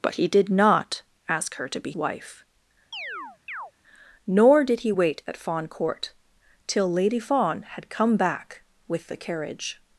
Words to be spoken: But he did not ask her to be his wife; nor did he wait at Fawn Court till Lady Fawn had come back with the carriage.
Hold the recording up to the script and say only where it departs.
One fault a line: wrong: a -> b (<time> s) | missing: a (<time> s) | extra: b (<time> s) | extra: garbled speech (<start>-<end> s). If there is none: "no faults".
missing: his (1.9 s)